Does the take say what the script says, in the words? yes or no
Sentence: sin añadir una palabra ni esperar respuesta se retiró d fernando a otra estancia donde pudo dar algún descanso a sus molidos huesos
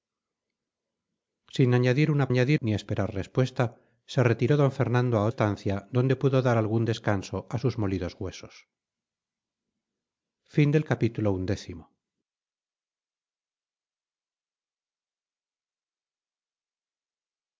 no